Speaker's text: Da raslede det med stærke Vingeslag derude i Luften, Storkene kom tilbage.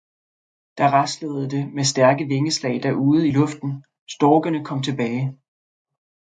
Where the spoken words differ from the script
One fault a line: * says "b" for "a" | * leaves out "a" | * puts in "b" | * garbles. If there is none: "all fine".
all fine